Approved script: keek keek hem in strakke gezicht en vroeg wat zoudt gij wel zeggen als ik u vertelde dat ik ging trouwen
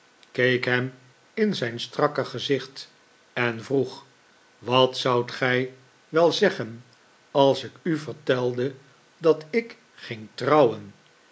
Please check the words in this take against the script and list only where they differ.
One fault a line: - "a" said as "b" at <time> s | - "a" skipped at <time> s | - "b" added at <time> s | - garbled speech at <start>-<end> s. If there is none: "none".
- "keek" skipped at 0.7 s
- "zijn" added at 1.5 s